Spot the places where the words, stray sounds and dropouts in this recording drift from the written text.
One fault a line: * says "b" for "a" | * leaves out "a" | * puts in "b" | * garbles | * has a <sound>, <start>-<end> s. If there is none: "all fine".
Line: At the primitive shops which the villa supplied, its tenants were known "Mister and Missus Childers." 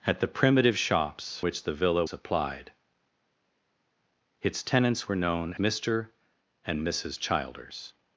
all fine